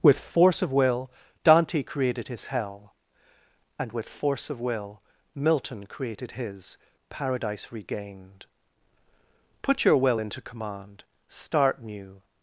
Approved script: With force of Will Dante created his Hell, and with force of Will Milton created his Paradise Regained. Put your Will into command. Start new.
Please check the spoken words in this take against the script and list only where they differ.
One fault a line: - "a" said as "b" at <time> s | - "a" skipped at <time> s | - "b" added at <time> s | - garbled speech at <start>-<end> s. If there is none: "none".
none